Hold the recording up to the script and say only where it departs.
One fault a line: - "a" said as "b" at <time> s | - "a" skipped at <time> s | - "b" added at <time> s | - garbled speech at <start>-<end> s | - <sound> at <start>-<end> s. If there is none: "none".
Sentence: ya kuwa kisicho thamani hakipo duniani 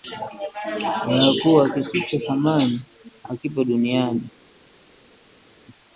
none